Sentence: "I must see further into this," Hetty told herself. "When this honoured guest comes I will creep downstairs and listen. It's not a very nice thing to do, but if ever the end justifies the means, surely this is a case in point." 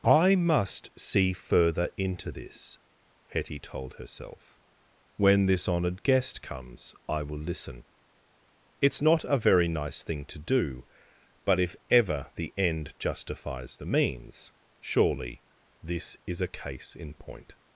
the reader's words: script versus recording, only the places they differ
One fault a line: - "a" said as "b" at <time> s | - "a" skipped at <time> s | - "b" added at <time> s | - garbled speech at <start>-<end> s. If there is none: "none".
- "creep downstairs and" skipped at 7.4 s